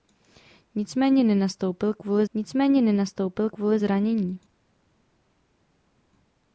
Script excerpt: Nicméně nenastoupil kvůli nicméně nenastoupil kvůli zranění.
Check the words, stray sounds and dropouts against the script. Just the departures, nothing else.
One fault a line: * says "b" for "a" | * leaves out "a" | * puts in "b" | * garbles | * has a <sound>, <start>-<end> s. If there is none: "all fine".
all fine